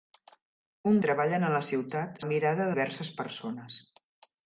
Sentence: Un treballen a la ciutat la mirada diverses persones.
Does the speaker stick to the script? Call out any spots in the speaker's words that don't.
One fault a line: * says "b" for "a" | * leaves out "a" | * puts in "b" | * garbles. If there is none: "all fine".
all fine